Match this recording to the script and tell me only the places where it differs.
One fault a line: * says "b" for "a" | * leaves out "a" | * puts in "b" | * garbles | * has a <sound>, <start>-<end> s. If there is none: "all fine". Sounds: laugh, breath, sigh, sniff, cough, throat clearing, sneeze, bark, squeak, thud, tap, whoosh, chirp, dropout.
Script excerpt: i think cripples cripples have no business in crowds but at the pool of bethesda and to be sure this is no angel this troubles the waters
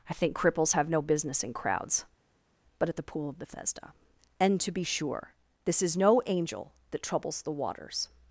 * leaves out "cripples"
* says "that" for "this"